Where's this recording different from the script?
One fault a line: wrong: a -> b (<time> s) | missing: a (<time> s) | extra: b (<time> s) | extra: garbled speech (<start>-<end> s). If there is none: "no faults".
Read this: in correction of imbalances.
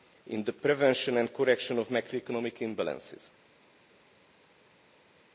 extra: the prevention and (0.4 s)
extra: macroeconomic (1.9 s)